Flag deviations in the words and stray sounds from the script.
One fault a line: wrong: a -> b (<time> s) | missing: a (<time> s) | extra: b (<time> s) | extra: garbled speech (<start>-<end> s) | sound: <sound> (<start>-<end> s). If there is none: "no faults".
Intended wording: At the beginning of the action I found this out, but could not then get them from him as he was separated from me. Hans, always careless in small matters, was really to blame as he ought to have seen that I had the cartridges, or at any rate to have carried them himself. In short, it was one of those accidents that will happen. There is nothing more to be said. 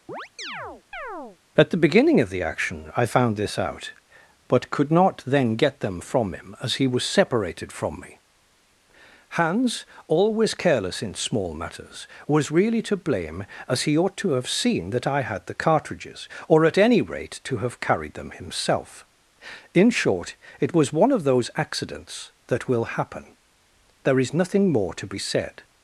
sound: chirp (0.1-1.4 s)